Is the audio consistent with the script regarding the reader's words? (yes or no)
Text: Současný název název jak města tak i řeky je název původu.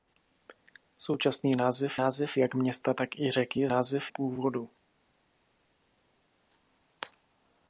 yes